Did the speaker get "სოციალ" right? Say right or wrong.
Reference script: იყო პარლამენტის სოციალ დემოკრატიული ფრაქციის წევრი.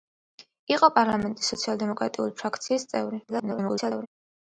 right